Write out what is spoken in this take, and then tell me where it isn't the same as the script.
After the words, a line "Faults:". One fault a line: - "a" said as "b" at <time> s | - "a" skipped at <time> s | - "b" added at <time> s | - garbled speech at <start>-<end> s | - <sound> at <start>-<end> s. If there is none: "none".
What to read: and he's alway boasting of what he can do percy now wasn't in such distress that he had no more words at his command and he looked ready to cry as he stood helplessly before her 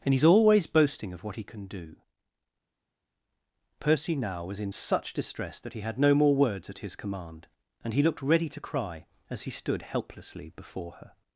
and he's always boasting of what he can do percy now was in such distress that he had no more words at his command and he looked ready to cry as he stood helplessly before her
Faults:
- "alway" said as "always" at 0.2 s
- "wasn't" said as "was" at 4.4 s